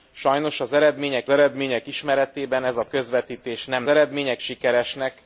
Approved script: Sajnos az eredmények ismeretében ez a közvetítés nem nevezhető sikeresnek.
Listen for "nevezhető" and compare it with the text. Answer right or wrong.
wrong